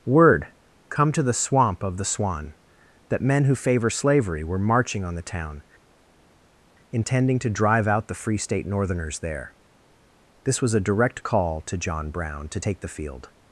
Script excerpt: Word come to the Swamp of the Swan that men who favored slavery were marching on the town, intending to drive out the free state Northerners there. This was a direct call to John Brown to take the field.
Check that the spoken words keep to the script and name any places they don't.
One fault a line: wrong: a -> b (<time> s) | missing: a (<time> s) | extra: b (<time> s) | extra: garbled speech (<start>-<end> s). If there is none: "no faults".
wrong: favored -> favor (3.5 s)